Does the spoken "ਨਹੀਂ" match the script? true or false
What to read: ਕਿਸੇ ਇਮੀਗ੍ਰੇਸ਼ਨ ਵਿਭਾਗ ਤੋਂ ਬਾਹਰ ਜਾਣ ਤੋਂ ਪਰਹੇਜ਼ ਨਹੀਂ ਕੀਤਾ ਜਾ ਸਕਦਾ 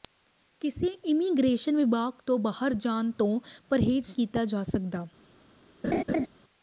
false